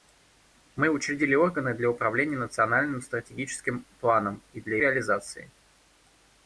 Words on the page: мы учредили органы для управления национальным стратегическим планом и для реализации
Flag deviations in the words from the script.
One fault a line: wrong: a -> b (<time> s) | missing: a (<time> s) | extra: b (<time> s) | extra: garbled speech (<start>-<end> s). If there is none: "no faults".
no faults